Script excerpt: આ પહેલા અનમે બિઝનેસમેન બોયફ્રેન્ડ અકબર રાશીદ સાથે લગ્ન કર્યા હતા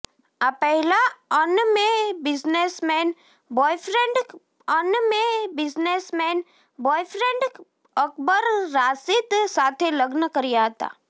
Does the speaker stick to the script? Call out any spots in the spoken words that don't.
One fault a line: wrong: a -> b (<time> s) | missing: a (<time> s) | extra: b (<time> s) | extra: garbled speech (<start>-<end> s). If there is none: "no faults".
extra: અનમે બિઝનેસમેન બોયફ્રેન્ડ (4.7 s)